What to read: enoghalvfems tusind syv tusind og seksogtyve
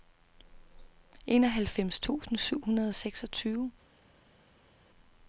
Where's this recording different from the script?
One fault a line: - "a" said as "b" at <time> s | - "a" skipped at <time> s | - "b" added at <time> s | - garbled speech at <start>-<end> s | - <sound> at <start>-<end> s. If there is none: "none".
- "tusind" said as "hundrede" at 2.6 s